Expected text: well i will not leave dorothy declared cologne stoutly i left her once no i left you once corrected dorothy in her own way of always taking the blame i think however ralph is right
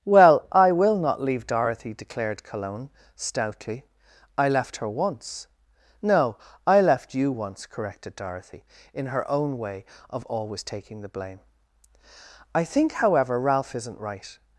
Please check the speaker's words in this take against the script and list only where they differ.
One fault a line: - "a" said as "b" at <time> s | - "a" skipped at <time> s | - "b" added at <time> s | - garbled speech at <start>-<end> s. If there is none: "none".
- "is" said as "isn't" at 13.8 s